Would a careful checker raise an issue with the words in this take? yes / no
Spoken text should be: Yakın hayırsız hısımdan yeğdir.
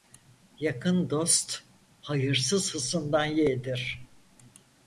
yes